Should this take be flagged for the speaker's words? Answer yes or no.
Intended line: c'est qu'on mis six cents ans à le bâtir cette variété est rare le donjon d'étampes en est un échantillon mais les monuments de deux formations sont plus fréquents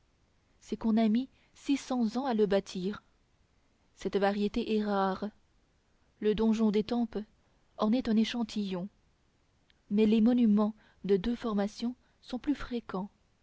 yes